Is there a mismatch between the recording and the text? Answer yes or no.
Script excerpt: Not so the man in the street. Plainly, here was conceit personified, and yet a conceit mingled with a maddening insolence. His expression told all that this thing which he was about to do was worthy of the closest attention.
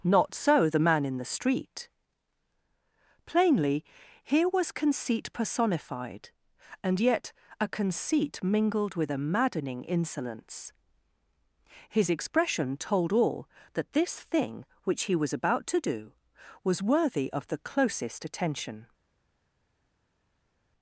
no